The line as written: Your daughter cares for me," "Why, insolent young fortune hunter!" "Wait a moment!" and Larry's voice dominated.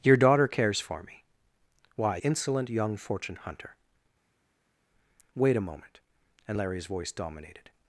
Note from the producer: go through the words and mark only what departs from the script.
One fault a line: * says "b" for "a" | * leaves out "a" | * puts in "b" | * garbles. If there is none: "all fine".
all fine